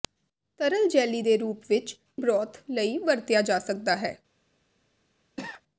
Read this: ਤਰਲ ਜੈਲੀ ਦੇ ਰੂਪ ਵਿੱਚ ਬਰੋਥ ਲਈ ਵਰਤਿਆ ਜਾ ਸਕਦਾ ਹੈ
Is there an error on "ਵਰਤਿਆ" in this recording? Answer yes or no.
no